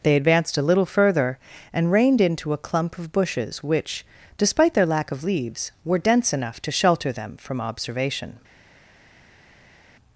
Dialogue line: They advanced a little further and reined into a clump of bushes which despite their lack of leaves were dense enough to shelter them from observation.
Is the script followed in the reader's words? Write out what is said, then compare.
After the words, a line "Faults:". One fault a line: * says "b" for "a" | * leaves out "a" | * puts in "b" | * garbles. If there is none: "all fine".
They advanced a little further and reined into a clump of bushes which despite their lack of leaves were dense enough to shelter them from observation.
Faults:
all fine